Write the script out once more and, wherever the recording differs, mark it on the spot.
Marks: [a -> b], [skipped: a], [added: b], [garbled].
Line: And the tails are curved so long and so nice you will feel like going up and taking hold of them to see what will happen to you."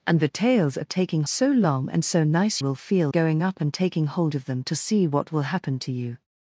And the tails are [curved -> taking] so long and so nice [skipped: you] will feel [skipped: like] going up and taking hold of them to see what will happen to you."